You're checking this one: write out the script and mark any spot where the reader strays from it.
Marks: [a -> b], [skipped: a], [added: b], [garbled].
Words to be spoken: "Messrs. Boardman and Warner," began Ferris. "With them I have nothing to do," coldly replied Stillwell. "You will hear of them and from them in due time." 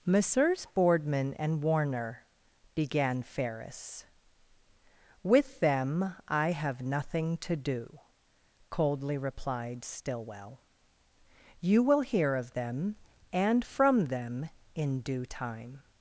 "Messrs. Boardman and Warner," began Ferris. "With them I have nothing to do," coldly replied Stillwell. "You will hear of them and from them in due time."